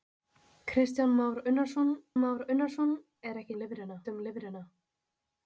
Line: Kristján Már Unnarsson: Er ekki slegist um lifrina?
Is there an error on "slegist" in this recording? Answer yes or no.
yes